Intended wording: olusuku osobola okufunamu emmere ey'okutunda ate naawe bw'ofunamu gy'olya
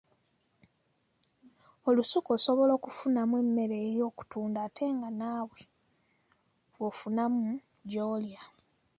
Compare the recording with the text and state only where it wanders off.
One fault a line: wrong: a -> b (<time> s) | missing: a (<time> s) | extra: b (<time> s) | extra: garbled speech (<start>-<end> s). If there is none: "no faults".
extra: nga (5.0 s)